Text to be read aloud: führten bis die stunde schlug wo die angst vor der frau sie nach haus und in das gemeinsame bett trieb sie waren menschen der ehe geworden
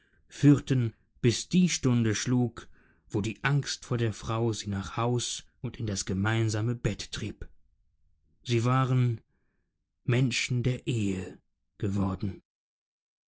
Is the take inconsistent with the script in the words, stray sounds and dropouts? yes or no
no